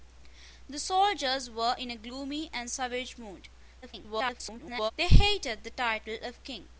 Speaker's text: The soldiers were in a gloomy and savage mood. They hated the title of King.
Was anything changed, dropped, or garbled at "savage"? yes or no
no